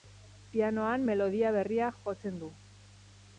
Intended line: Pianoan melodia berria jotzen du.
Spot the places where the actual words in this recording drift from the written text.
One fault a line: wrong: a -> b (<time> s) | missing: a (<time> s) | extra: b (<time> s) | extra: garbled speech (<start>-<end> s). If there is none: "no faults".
no faults